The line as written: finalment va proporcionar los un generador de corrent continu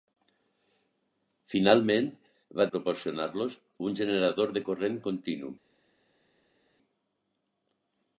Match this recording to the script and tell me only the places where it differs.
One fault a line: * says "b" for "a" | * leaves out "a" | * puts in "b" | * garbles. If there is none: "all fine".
all fine